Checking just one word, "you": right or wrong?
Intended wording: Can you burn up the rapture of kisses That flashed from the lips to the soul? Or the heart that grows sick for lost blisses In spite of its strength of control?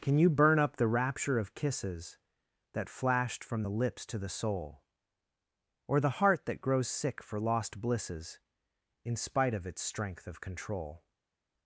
right